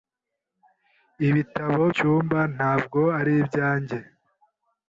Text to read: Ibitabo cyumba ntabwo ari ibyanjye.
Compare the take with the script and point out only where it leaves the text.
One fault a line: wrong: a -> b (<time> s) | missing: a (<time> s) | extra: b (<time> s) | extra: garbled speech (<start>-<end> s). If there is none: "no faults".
no faults